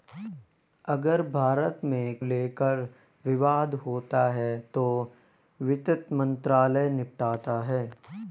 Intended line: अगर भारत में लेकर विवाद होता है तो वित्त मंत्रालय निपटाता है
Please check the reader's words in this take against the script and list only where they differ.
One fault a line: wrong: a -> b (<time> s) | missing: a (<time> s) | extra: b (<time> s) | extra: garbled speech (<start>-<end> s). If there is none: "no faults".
no faults